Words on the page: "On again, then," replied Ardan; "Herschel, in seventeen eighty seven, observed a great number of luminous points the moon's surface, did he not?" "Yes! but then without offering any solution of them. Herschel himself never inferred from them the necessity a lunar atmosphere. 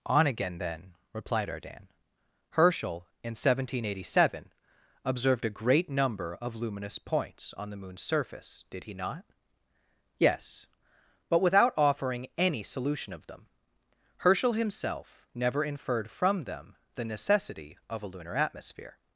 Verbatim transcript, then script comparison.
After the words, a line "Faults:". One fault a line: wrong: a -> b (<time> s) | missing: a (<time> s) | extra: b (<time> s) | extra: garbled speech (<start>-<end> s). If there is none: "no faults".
"On again, then," replied Ardan; "Herschel, in seventeen eighty seven, observed a great number of luminous points on the moon's surface, did he not?" "Yes! but without offering any solution of them. Herschel himself never inferred from them the necessity of a lunar atmosphere.
Faults:
extra: on (7.5 s)
missing: then (11.4 s)
extra: of (17.9 s)